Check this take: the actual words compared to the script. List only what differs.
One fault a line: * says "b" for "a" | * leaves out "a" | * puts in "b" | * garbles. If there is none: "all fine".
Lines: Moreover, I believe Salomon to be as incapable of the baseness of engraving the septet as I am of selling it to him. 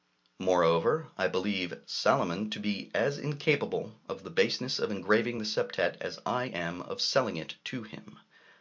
all fine